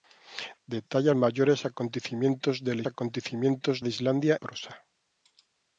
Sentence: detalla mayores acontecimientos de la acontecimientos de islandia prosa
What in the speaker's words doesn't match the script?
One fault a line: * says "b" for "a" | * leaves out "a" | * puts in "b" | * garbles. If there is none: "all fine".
all fine